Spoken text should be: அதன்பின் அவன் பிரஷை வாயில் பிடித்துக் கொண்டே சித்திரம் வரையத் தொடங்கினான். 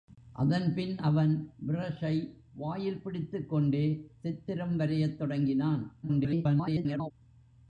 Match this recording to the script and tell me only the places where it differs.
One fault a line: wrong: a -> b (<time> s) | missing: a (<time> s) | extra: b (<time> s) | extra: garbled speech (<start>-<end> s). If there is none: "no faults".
extra: garbled speech (6.0-7.1 s)